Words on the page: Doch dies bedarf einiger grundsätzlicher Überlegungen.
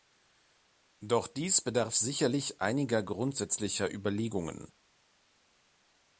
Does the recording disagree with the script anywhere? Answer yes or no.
yes